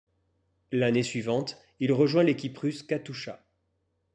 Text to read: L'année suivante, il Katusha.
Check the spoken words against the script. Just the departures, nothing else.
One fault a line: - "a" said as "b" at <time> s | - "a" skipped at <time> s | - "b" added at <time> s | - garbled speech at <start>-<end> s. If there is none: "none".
- "rejoint l'équipe russe" added at 1.9 s